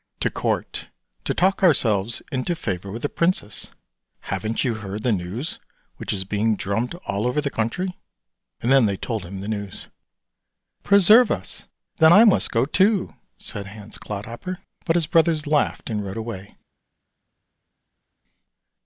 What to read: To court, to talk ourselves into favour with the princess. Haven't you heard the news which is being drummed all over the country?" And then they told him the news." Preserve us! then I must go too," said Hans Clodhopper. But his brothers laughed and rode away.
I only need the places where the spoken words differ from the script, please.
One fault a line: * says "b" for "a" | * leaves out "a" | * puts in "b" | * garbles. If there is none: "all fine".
all fine